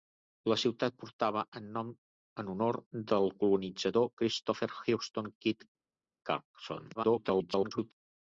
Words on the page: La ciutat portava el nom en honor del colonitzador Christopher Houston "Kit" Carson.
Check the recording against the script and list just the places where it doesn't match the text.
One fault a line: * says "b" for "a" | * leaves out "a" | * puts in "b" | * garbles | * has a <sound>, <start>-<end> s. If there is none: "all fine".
* garbles